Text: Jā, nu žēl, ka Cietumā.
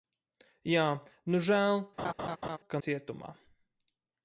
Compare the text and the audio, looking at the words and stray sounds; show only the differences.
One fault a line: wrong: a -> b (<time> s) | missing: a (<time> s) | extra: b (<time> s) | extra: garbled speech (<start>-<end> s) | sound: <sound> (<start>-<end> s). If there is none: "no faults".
sound: laugh (2.0-2.6 s)